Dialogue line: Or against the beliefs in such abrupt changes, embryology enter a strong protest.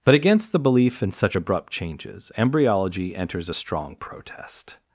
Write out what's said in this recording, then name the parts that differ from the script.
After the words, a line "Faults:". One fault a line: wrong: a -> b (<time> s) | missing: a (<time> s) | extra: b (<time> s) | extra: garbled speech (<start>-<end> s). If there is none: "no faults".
But against the belief in such abrupt changes, embryology enters a strong protest.
Faults:
wrong: Or -> But (0.0 s)
wrong: beliefs -> belief (0.6 s)
wrong: enter -> enters (3.2 s)